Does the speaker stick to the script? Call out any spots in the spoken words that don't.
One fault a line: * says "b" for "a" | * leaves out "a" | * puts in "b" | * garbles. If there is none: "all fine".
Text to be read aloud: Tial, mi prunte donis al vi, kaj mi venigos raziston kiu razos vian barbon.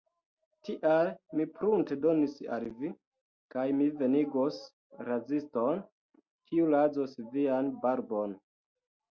all fine